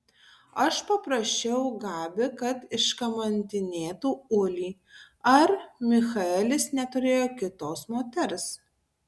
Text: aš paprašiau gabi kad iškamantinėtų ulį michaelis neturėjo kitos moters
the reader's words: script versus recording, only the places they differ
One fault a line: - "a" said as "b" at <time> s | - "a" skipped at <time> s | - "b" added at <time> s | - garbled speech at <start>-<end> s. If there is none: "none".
- "ar" added at 5.3 s